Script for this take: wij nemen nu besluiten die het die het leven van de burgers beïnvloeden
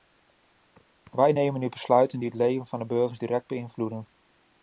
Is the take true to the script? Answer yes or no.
no